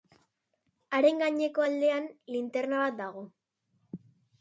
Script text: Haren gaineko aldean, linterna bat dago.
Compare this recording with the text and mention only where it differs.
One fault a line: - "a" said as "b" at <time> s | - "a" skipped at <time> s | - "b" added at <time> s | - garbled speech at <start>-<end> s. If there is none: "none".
none